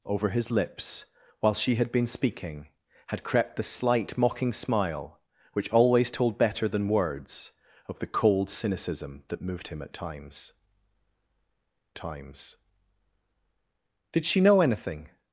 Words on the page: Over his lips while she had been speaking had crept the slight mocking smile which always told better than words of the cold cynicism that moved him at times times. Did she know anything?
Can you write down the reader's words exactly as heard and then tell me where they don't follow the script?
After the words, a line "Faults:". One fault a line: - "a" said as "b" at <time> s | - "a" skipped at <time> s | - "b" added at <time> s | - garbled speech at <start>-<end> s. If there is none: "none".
Over his lips while she had been speaking had crept the slight mocking smile which always told better than words of the cold cynicism that moved him at times times. Did she know anything?
Faults:
none